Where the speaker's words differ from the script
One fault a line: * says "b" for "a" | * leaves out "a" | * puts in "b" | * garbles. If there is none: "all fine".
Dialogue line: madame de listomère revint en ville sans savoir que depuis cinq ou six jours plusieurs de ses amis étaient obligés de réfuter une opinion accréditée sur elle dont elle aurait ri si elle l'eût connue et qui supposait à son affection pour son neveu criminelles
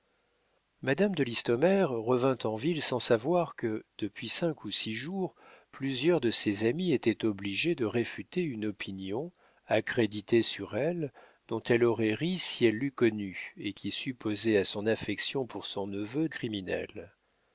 all fine